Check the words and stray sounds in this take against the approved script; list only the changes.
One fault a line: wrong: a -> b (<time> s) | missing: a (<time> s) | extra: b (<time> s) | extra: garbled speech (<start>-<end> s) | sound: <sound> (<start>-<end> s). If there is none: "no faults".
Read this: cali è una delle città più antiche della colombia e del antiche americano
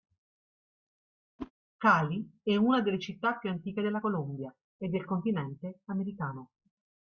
sound: whoosh (1.4-1.5 s)
wrong: antiche -> continente (5.1 s)